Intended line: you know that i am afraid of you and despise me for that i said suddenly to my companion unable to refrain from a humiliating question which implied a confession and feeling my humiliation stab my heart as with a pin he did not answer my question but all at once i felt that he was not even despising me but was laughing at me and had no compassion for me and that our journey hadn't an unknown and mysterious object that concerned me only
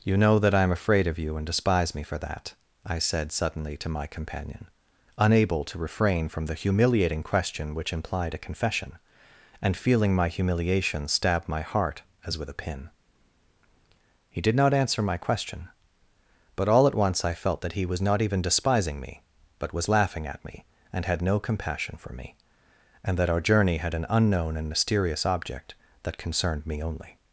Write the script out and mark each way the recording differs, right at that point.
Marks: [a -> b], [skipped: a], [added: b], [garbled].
you know that i am afraid of you and despise me for that i said suddenly to my companion unable to refrain from [a -> the] humiliating question which implied a confession and feeling my humiliation stab my heart as with a pin he did not answer my question but all at once i felt that he was not even despising me but was laughing at me and had no compassion for me and that our journey [hadn't -> had] an unknown and mysterious object that concerned me only